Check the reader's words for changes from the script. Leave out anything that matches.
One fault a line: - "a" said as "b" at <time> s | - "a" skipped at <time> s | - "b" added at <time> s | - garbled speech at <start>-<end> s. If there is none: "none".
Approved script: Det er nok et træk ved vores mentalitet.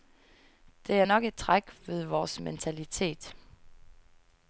none